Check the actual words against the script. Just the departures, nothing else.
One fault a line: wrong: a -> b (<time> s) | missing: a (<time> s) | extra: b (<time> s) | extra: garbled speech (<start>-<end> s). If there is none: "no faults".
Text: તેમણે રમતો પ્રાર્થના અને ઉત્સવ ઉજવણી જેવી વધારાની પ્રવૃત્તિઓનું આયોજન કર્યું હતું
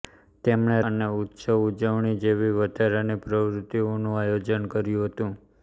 missing: રમતો પ્રાર્થના (0.8 s)